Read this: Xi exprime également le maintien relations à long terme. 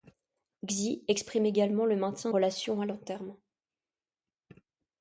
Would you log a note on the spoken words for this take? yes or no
no